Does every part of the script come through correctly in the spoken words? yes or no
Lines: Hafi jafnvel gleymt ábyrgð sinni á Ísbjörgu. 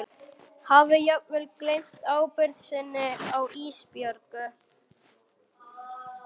yes